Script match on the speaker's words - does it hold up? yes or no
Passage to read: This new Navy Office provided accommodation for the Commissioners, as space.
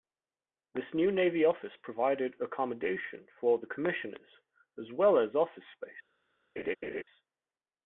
no